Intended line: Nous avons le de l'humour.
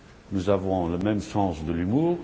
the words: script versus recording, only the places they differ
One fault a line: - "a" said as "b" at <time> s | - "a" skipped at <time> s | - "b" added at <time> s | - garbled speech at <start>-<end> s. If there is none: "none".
- "même sens" added at 1.0 s